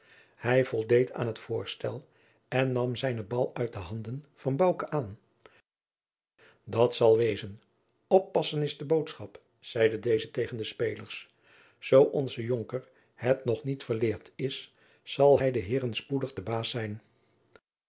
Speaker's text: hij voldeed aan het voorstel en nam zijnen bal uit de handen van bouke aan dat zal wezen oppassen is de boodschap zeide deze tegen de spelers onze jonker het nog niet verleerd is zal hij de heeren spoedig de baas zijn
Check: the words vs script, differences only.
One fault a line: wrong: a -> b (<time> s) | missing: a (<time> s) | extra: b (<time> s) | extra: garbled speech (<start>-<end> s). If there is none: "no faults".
extra: zoo (11.8 s)